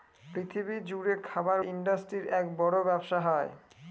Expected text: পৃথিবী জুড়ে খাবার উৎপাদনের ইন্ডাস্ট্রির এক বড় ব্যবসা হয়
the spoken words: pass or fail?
fail